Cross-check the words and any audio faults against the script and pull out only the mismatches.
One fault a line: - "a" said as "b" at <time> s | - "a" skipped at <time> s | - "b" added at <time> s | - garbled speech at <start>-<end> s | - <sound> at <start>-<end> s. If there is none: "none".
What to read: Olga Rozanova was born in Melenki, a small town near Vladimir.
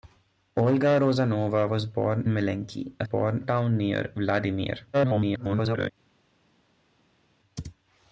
- "in" skipped at 2.3 s
- "small" said as "born" at 3.0 s
- garbled speech at 4.9-5.9 s